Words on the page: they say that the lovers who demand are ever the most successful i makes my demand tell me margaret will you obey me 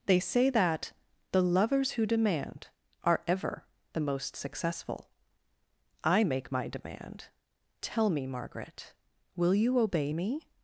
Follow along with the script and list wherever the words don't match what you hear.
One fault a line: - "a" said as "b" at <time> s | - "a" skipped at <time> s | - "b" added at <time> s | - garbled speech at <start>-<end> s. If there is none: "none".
- "makes" said as "make" at 6.2 s